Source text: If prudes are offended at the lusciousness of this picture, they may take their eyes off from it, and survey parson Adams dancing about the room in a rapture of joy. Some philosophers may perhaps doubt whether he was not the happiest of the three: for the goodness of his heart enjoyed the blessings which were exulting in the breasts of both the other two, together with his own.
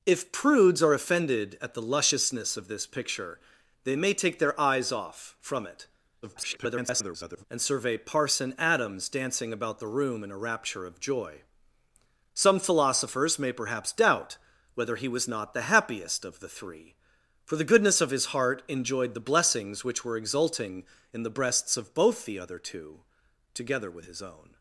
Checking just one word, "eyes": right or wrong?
right